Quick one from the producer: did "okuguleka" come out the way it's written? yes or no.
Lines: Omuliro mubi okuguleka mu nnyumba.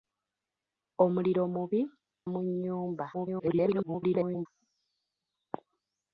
no